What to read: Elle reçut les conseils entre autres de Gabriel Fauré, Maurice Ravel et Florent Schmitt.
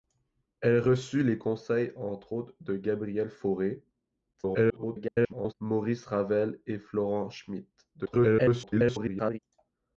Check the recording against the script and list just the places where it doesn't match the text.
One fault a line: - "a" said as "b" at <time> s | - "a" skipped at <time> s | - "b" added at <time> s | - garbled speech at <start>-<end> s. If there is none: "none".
- garbled speech at 4.3-5.5 s
- garbled speech at 7.9-9.4 s